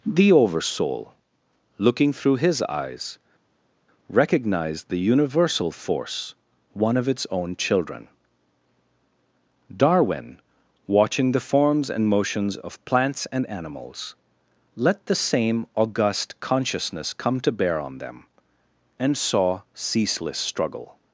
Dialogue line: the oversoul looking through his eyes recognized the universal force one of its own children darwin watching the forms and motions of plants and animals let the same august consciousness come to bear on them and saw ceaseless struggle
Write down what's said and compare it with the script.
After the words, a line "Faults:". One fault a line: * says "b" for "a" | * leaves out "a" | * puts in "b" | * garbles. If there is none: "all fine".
the oversoul looking through his eyes recognized the universal force one of its own children darwin watching the forms and motions of plants and animals let the same august consciousness come to bear on them and saw ceaseless struggle
Faults:
all fine